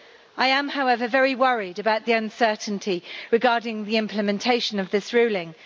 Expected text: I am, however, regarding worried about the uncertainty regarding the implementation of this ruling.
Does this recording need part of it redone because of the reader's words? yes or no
yes